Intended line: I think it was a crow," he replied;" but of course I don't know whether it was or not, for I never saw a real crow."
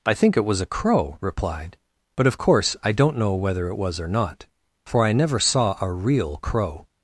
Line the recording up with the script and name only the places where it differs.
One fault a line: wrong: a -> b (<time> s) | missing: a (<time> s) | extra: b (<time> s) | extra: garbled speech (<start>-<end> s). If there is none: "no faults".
missing: he (1.2 s)